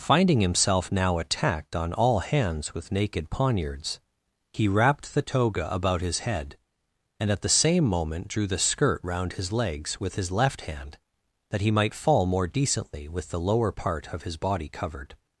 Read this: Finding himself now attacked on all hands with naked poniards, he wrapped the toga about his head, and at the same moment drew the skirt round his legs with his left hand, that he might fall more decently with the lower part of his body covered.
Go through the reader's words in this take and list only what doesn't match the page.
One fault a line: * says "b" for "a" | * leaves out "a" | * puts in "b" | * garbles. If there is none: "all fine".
all fine